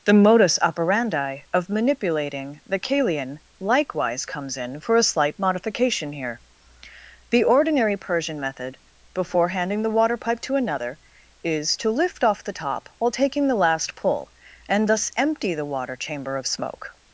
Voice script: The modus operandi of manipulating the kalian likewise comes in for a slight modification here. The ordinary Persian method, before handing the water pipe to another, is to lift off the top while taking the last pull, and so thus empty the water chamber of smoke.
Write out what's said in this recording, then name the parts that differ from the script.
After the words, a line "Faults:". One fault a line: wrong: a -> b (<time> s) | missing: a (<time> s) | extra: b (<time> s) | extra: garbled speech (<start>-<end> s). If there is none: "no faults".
The modus operandi of manipulating the kalian likewise comes in for a slight modification here. The ordinary Persian method, before handing the water pipe to another, is to lift off the top while taking the last pull, and thus empty the water chamber of smoke.
Faults:
missing: so (14.9 s)